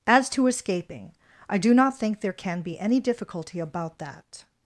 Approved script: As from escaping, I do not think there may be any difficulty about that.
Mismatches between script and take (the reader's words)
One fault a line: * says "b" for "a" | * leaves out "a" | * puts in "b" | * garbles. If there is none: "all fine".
* says "to" for "from"
* says "can" for "may"